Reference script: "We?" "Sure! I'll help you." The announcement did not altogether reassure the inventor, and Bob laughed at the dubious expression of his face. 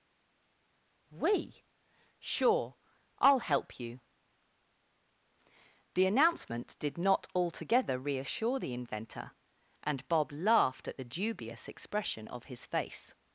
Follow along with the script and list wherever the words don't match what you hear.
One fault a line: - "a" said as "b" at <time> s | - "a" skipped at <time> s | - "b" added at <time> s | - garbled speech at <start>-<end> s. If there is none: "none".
none